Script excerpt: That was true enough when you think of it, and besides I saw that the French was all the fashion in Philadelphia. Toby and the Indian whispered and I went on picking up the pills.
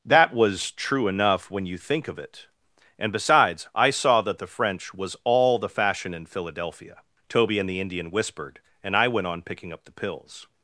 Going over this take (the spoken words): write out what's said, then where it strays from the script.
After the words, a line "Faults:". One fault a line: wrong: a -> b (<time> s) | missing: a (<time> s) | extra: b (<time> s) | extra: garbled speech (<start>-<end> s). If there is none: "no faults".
That was true enough when you think of it, and besides I saw that the French was all the fashion in Philadelphia. Toby and the Indian whispered and I went on picking up the pills.
Faults:
no faults